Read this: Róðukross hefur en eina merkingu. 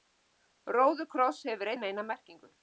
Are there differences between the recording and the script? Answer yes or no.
no